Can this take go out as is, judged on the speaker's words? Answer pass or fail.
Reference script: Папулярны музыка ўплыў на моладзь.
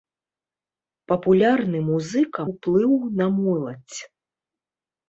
pass